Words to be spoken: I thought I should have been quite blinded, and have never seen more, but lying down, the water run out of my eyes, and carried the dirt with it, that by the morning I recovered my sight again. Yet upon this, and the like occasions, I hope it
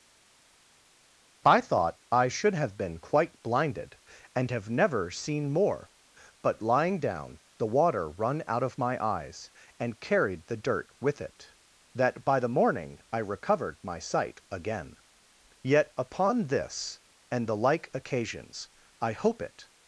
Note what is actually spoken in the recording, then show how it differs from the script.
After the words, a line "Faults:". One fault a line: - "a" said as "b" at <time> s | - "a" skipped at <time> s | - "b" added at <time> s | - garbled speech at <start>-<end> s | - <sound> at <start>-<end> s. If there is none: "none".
I thought I should have been quite blinded, and have never seen more, but lying down, the water run out of my eyes, and carried the dirt with it, that by the morning I recovered my sight again. Yet upon this, and the like occasions, I hope it
Faults:
none